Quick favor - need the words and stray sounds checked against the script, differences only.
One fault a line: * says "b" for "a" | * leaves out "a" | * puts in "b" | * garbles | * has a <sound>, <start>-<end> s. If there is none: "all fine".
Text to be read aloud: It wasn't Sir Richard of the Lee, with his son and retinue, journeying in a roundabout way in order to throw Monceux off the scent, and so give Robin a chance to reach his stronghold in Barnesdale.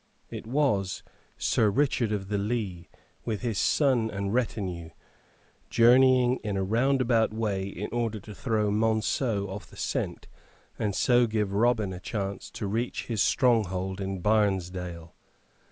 * says "was" for "wasn't"